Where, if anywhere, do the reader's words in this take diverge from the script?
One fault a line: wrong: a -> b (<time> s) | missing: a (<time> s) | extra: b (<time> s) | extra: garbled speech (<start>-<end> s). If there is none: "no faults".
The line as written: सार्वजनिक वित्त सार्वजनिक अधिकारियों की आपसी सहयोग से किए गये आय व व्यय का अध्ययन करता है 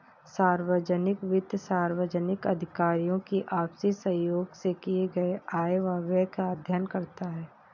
no faults